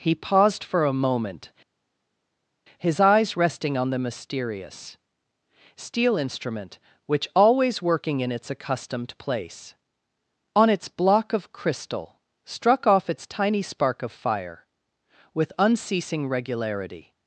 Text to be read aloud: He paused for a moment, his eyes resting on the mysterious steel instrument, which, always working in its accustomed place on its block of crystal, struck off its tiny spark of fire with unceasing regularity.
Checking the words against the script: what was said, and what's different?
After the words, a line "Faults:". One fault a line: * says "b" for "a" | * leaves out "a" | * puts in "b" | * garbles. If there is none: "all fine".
He paused for a moment, his eyes resting on the mysterious steel instrument, which, always working in its accustomed place on its block of crystal, struck off its tiny spark of fire with unceasing regularity.
Faults:
all fine